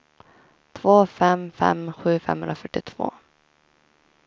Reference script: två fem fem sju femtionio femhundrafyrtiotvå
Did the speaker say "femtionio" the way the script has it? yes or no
no